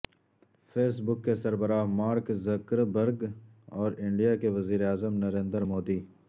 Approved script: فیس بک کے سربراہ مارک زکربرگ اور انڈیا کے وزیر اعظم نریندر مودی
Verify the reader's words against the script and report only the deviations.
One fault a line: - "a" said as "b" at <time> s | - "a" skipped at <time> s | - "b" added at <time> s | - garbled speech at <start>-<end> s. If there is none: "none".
none